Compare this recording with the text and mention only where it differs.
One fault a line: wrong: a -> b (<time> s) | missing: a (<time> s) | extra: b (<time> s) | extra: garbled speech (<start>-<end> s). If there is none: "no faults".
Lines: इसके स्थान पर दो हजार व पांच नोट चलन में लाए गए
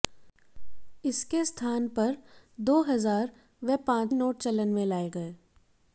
no faults